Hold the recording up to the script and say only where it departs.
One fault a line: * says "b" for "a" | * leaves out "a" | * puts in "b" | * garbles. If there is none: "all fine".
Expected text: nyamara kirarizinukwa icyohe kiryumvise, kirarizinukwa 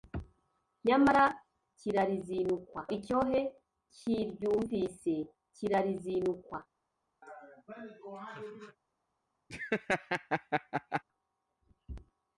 all fine